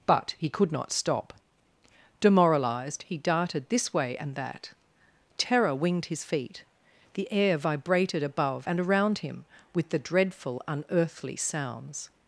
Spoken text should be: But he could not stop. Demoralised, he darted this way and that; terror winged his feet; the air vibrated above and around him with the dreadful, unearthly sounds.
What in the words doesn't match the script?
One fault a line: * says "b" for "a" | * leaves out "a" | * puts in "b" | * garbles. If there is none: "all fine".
all fine